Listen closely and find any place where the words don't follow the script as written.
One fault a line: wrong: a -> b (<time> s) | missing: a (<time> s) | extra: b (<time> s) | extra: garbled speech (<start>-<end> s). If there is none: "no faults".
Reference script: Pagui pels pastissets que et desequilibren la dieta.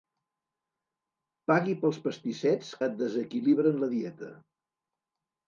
missing: que (2.7 s)